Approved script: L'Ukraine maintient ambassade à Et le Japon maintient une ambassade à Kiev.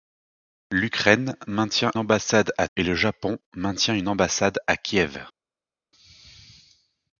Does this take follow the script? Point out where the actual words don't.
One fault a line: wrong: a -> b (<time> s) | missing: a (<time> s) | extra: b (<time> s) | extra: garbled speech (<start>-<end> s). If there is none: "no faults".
no faults